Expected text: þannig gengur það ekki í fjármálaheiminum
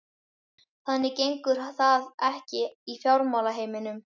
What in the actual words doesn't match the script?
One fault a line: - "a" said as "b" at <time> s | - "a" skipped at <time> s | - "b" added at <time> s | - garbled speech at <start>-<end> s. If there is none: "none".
none